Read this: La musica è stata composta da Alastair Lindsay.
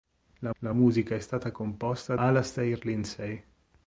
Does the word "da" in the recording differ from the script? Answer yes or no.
yes